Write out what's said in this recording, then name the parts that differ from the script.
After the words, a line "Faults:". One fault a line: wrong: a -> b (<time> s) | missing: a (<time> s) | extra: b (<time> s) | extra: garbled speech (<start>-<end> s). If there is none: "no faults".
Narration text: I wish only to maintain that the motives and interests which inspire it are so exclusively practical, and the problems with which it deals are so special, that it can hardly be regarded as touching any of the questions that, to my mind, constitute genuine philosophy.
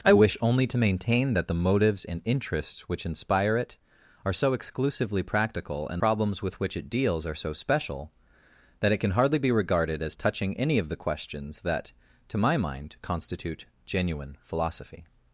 I wish only to maintain that the motives and interests which inspire it are so exclusively practical, and problems with which it deals are so special, that it can hardly be regarded as touching any of the questions that, to my mind, constitute genuine philosophy.
Faults:
missing: the (6.0 s)